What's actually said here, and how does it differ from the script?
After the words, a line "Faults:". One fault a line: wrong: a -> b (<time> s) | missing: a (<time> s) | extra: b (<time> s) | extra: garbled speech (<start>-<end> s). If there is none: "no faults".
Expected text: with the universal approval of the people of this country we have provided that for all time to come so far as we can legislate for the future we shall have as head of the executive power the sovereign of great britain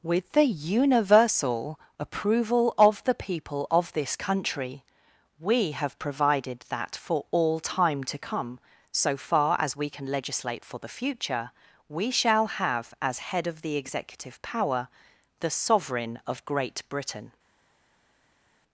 with the universal approval of the people of this country we have provided that for all time to come so far as we can legislate for the future we shall have as head of the executive power the sovereign of great britain
Faults:
no faults